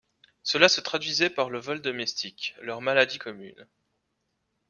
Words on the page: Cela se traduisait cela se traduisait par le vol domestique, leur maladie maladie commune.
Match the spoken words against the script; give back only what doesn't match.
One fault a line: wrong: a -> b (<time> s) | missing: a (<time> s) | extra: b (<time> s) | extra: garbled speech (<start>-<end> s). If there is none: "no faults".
missing: cela se traduisait (1.3 s)
missing: maladie (3.2 s)